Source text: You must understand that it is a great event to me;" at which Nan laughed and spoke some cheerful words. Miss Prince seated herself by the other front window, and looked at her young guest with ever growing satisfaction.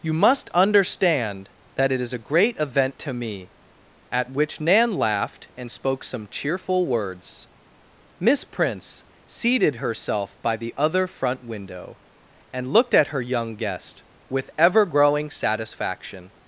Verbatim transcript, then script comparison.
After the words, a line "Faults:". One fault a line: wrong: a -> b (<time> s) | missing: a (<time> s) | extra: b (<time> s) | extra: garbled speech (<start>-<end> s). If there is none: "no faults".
You must understand that it is a great event to me;" at which Nan laughed and spoke some cheerful words. Miss Prince seated herself by the other front window, and looked at her young guest with ever growing satisfaction.
Faults:
no faults